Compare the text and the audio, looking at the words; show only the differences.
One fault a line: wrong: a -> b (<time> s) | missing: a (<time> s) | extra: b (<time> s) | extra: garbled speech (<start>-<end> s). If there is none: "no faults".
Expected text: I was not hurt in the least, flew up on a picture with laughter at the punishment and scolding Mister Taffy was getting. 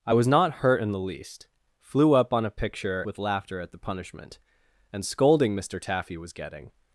no faults